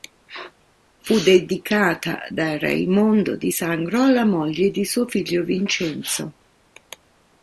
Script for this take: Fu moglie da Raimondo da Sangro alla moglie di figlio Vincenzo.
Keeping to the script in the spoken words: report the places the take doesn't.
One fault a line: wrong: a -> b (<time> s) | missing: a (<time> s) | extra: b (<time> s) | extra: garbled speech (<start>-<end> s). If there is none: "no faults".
wrong: moglie -> dedicata (1.2 s)
wrong: da -> di (3.3 s)
extra: suo (4.8 s)